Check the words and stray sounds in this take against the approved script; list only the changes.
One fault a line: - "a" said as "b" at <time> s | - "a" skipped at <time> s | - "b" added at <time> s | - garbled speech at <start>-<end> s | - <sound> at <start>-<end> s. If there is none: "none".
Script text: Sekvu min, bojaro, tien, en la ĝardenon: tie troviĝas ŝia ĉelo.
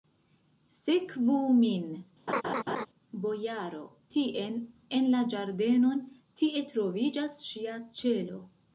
- laugh at 2.3-2.9 s